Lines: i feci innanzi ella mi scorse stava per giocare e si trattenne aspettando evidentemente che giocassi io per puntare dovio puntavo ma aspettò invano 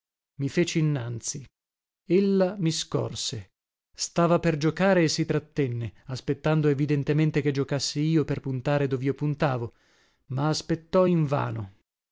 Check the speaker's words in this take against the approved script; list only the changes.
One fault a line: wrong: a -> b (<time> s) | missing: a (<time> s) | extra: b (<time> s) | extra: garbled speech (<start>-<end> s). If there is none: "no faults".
no faults